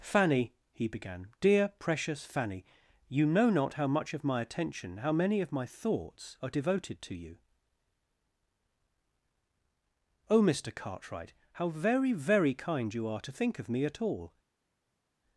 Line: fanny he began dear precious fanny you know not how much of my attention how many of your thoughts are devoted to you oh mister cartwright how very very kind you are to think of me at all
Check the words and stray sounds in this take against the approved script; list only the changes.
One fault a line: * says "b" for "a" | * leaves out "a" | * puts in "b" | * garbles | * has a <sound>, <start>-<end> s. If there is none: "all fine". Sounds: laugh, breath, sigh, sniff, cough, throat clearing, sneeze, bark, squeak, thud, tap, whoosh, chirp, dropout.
* says "my" for "your"